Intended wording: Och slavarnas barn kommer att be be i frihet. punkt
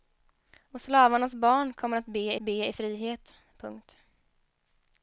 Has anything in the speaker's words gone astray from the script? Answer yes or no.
no